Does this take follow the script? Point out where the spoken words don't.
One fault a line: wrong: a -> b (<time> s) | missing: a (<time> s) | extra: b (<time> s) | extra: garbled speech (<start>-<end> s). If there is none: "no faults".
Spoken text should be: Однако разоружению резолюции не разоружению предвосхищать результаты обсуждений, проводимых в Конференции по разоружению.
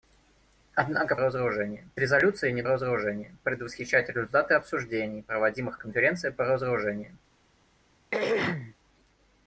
no faults